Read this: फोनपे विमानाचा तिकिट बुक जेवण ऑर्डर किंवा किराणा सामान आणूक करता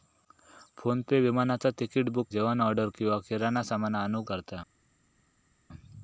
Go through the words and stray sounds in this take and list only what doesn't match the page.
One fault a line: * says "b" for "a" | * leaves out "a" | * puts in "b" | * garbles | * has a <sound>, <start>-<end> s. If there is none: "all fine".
all fine